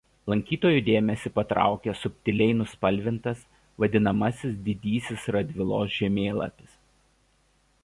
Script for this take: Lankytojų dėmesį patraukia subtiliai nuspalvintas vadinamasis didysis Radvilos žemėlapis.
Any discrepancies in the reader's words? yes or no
no